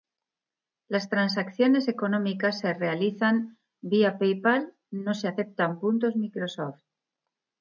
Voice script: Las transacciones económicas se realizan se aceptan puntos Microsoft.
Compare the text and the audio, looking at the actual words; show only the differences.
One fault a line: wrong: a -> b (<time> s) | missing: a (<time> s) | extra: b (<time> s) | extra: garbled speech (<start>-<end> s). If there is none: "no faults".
extra: vía PayPal no (3.8 s)